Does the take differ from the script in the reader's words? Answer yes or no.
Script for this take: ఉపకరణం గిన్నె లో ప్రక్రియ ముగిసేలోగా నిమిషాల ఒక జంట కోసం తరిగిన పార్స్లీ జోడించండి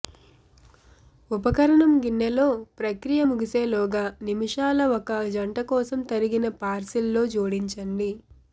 no